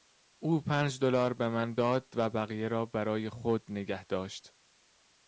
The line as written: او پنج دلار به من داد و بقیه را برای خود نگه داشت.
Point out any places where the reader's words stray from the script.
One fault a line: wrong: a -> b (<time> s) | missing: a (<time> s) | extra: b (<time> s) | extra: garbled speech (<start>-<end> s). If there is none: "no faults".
no faults